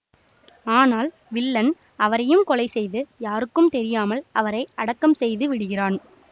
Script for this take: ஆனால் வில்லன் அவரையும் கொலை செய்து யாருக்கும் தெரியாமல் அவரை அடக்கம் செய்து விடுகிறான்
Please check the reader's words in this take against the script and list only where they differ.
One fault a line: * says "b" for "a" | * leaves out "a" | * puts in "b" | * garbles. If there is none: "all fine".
all fine